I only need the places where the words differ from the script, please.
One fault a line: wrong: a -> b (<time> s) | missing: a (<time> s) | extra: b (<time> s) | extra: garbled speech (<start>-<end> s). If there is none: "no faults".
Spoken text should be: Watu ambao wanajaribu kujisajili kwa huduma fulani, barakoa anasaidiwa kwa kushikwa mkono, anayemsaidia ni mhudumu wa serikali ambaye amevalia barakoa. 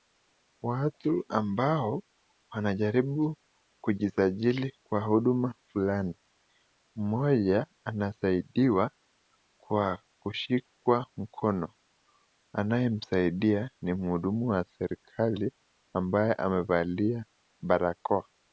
wrong: barakoa -> mmoja (7.0 s)